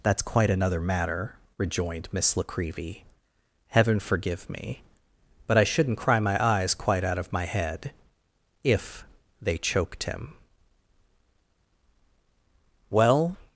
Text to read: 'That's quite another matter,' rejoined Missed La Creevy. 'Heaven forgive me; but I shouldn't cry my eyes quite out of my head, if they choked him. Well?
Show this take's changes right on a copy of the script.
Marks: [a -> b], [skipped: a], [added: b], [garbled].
'That's quite another matter,' rejoined [Missed -> Miss] La Creevy. 'Heaven forgive me; but I shouldn't cry my eyes quite out of my head, if they choked him. Well?